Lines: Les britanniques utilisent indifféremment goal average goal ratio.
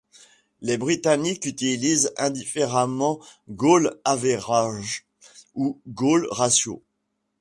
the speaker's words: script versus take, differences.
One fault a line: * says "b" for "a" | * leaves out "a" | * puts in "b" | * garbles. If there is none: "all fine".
* puts in "ou"